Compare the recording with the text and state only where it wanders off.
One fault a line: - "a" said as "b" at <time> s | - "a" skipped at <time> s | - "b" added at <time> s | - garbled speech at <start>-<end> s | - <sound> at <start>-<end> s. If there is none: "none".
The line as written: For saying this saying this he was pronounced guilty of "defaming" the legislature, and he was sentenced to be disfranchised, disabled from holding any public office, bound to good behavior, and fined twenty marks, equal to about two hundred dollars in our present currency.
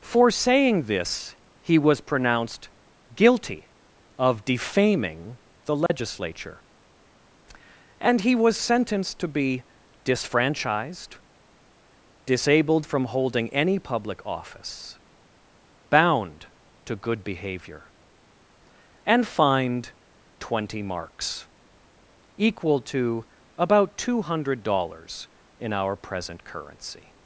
- "saying this" skipped at 1.4 s
- dropout at 5.9-5.9 s